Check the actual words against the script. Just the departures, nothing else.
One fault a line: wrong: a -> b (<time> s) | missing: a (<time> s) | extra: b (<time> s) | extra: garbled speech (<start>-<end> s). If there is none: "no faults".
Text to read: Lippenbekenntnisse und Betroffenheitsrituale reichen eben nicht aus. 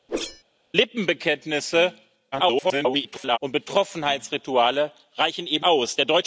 extra: garbled speech (2.3-3.4 s)
missing: nicht (5.7 s)